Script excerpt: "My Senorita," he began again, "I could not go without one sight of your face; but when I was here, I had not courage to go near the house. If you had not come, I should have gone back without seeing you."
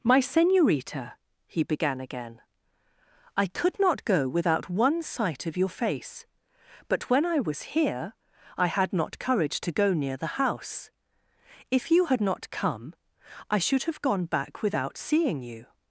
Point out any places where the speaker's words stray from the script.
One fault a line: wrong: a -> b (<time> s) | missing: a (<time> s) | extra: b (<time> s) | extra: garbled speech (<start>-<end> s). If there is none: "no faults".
no faults